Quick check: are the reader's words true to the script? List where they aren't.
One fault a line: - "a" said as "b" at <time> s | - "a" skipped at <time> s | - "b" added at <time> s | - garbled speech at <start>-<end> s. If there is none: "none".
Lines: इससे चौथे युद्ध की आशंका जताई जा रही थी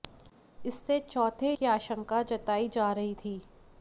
- "युद्ध" skipped at 1.5 s